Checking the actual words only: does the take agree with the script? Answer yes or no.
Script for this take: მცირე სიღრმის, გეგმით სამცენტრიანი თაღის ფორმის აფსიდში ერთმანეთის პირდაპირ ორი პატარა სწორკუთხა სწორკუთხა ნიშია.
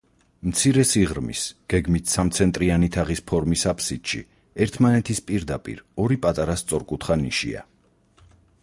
no